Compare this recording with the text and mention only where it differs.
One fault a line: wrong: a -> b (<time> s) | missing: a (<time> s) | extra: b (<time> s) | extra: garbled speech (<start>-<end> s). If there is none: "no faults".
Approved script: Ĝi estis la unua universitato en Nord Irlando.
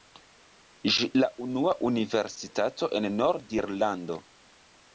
missing: estis (1.1 s)